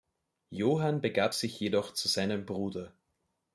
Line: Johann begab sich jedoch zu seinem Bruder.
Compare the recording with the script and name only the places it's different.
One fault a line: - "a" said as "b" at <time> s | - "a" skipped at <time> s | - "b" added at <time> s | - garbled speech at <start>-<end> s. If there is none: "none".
none